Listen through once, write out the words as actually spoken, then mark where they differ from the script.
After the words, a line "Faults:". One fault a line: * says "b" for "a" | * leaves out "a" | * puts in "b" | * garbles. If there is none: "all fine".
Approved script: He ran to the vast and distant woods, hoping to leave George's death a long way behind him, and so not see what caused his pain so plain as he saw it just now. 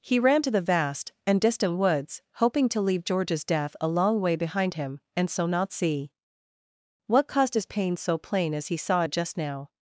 He ran to the vast and distant woods, hoping to leave George's death a long way behind him, and so not see what caused his pain so plain as he saw it just now.
Faults:
all fine